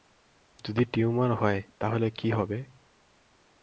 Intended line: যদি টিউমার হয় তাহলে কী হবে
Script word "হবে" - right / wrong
right